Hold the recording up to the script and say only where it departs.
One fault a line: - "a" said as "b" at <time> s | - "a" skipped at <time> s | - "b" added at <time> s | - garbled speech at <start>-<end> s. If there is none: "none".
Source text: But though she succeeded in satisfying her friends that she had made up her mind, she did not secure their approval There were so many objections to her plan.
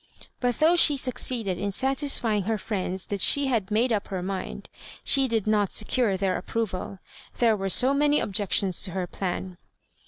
none